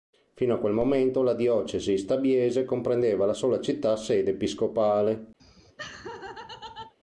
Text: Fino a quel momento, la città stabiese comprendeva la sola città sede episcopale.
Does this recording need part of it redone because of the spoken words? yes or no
yes